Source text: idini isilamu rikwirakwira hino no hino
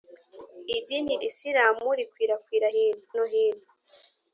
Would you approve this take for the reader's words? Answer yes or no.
yes